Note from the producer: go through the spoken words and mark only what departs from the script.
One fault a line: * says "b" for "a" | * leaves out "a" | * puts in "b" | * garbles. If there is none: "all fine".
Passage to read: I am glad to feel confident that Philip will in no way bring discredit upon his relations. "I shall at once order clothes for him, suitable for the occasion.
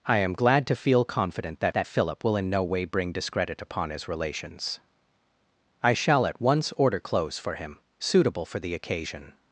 * puts in "that"